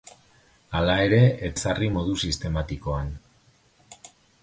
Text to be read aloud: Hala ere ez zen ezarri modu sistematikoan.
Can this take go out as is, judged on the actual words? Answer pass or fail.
fail